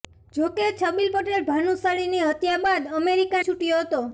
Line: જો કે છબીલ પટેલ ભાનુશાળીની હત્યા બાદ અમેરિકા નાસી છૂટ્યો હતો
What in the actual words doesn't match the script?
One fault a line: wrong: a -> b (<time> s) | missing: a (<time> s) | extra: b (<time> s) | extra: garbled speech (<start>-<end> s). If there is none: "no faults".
missing: નાસી (3.4 s)